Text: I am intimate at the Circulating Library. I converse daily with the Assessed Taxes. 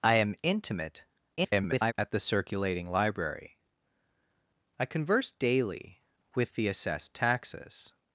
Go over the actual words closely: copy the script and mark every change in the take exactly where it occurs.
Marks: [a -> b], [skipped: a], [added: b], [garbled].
I am intimate [garbled] at the Circulating Library. I converse daily with the Assessed Taxes.